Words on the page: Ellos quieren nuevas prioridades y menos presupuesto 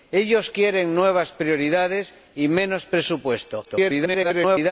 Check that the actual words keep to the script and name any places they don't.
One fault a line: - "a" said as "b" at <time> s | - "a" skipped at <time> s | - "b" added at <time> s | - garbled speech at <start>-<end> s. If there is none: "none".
- garbled speech at 3.6-4.7 s